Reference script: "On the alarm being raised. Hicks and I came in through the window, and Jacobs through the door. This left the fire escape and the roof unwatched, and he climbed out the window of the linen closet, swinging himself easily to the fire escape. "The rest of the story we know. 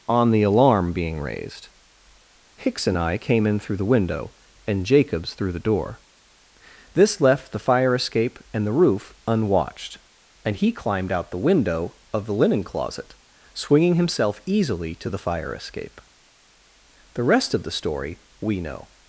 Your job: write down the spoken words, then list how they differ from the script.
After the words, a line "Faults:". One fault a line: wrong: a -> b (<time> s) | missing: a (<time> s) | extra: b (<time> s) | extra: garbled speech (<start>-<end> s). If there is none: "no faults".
"On the alarm being raised. Hicks and I came in through the window, and Jacobs through the door. This left the fire escape and the roof unwatched, and he climbed out the window of the linen closet, swinging himself easily to the fire escape. "The rest of the story we know.
Faults:
no faults